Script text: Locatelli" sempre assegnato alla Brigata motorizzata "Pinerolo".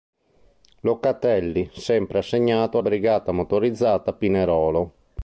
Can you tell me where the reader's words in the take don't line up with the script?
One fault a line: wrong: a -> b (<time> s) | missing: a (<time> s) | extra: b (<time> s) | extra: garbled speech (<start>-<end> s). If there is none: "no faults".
missing: alla (2.8 s)